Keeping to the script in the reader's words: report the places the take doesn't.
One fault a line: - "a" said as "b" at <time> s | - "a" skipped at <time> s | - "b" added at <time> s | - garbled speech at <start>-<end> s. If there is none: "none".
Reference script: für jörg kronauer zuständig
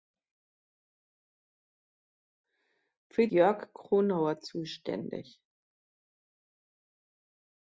none